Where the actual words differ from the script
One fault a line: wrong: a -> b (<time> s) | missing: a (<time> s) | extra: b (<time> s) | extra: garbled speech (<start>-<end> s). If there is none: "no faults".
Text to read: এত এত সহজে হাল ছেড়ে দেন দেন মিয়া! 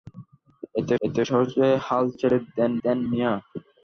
no faults